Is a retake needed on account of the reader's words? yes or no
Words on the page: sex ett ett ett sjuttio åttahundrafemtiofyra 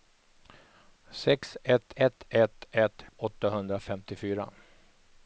yes